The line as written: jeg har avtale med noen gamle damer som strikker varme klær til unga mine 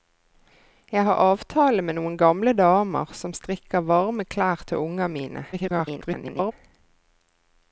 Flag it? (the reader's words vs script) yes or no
yes